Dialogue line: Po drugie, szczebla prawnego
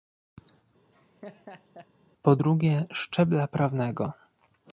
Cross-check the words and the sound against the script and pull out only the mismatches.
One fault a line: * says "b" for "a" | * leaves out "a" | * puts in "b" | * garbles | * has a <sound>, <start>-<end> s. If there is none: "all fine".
* has a laugh, 0.9-1.9 s